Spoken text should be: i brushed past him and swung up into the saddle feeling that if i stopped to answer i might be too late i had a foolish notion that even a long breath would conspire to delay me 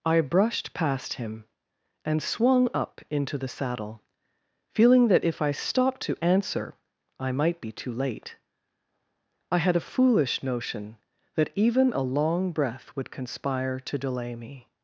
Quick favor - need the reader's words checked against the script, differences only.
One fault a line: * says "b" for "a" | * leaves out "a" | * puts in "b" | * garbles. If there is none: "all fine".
all fine